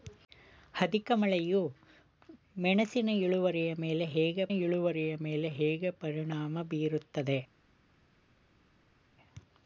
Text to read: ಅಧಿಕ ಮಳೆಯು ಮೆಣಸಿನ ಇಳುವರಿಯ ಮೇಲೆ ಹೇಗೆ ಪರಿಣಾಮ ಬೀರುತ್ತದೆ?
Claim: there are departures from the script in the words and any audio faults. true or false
true